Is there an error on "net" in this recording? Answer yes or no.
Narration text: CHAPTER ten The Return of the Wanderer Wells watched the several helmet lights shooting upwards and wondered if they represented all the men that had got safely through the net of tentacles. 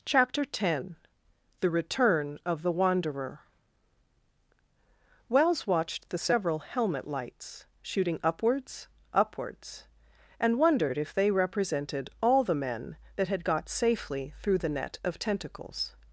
no